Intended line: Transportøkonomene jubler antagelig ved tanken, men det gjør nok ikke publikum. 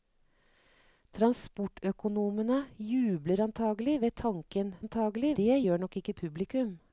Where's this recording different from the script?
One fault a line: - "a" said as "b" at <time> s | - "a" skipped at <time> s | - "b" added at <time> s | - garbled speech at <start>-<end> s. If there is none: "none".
- "men" said as "antagelig" at 4.8 s